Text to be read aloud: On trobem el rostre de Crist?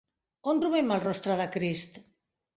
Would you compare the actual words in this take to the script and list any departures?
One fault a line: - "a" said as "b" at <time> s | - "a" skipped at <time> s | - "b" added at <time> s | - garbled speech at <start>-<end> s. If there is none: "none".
none